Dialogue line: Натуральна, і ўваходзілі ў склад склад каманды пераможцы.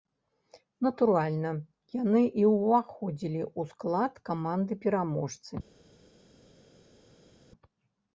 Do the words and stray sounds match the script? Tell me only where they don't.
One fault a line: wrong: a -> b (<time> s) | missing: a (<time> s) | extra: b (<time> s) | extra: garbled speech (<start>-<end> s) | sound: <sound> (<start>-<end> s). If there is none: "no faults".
extra: яны (2.0 s)
missing: склад (4.1 s)